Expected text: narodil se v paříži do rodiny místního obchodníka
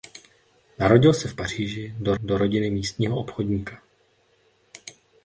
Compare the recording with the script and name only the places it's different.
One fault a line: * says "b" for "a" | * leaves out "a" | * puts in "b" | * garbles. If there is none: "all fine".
* puts in "do"